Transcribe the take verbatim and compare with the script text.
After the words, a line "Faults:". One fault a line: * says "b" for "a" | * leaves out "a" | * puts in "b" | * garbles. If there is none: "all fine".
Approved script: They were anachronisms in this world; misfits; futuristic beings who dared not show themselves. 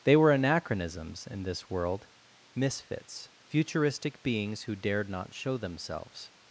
They were anachronisms in this world; misfits; futuristic beings who dared not show themselves.
Faults:
all fine